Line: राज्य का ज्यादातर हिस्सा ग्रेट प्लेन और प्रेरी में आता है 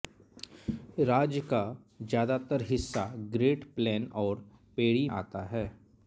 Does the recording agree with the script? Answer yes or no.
no